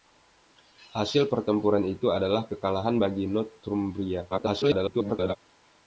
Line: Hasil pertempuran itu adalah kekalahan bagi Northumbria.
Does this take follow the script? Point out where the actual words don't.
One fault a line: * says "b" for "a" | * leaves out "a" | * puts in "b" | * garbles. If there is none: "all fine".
* garbles